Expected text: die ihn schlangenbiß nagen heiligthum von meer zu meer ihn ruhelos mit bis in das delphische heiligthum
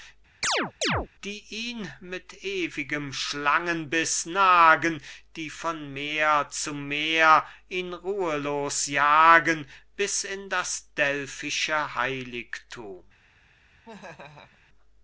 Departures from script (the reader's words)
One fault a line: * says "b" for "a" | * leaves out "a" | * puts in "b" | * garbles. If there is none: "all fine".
* puts in "mit ewigem"
* says "die" for "heiligthum"
* says "jagen" for "mit"